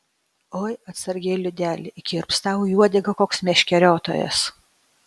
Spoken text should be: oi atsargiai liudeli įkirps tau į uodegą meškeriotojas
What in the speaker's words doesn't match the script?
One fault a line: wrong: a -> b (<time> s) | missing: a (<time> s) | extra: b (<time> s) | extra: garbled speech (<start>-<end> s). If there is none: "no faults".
extra: koks (3.2 s)